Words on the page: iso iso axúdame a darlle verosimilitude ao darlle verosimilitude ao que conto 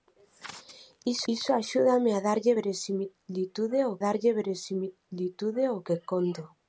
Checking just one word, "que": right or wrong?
right